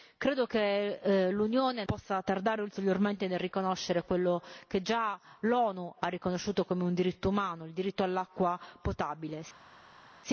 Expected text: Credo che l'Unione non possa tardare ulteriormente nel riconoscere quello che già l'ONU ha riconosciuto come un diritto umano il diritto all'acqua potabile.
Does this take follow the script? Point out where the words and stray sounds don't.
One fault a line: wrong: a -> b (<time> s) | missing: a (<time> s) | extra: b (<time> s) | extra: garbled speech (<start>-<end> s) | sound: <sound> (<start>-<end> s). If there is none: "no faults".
missing: non (1.8 s)